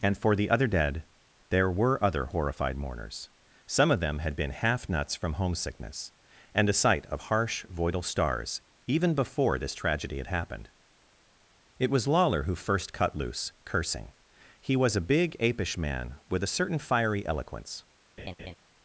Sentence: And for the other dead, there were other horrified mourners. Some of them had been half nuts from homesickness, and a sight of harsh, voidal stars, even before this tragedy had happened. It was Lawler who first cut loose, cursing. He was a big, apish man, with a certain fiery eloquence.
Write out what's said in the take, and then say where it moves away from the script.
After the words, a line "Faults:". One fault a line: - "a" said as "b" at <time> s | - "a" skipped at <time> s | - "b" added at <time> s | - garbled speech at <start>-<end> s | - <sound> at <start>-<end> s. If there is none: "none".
And for the other dead, there were other horrified mourners. Some of them had been half nuts from homesickness, and a sight of harsh, voidal stars, even before this tragedy had happened. It was Lawler who first cut loose, cursing. He was a big, apish man, with a certain fiery eloquence.
Faults:
- laugh at 18.2-18.5 s